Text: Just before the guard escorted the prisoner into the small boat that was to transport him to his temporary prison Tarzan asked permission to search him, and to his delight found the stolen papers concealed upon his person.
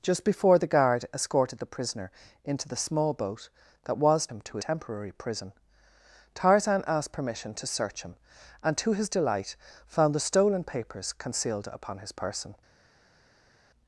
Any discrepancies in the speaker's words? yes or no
yes